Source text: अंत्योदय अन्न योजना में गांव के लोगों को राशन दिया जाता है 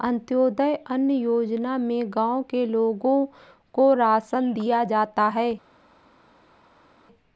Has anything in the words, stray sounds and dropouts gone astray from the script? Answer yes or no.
no